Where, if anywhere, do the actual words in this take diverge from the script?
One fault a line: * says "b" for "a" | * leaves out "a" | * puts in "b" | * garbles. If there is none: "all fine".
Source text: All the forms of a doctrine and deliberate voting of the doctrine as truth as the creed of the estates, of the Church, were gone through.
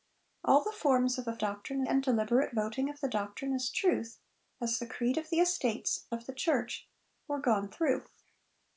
all fine